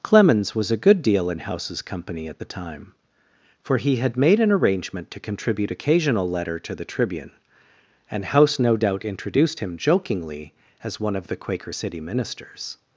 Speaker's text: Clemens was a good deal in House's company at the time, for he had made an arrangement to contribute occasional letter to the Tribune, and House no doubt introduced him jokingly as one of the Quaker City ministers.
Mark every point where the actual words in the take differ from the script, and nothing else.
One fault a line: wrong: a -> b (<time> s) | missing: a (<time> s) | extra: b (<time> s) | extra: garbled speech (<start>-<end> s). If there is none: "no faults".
no faults